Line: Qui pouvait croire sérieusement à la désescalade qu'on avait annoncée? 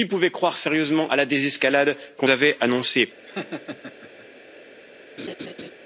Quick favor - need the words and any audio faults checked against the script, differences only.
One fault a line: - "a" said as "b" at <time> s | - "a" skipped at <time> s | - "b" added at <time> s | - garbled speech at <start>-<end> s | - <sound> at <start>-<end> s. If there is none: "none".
- laugh at 3.3-4.3 s
- laugh at 5.2-5.7 s